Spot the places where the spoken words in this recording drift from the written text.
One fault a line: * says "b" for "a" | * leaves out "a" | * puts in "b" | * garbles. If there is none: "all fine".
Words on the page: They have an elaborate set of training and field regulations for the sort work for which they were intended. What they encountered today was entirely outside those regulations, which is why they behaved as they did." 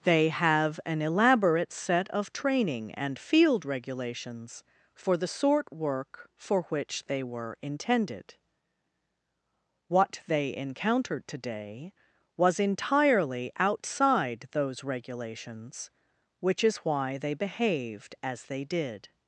all fine